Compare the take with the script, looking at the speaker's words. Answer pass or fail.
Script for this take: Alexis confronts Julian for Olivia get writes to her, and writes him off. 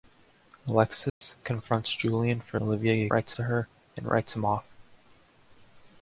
pass